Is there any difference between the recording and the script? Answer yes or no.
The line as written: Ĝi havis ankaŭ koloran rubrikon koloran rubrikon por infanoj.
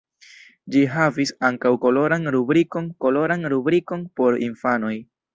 no